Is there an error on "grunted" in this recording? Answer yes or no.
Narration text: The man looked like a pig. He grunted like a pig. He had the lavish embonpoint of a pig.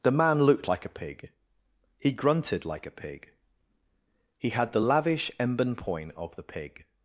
no